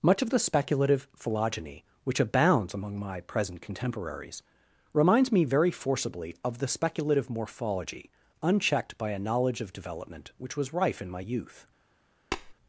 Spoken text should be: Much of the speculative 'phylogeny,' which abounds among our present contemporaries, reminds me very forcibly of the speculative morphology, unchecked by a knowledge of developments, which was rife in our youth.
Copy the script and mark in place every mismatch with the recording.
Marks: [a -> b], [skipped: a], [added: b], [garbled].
Much of the speculative 'phylogeny,' which abounds among [our -> my] present contemporaries, reminds me very forcibly of the speculative morphology, unchecked by a knowledge of [developments, -> development] which was rife in [our -> my] youth.